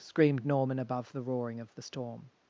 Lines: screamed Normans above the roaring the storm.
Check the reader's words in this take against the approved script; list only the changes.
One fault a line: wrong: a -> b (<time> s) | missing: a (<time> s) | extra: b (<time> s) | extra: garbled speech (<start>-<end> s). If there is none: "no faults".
wrong: Normans -> Norman (0.4 s)
extra: of (1.6 s)